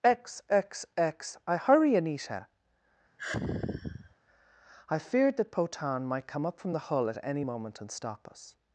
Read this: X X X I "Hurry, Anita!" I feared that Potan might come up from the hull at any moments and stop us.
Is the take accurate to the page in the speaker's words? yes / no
no